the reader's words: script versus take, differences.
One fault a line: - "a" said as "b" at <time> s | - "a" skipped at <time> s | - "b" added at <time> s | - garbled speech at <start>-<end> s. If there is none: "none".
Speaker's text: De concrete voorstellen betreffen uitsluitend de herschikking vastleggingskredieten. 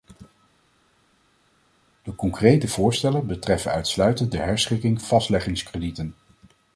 none